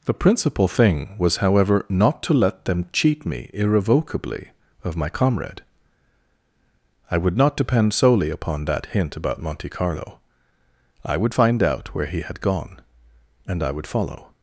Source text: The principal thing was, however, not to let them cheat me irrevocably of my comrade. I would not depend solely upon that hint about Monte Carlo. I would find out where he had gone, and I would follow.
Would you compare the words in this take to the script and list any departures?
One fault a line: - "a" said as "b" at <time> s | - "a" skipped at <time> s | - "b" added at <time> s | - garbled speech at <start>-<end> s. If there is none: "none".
none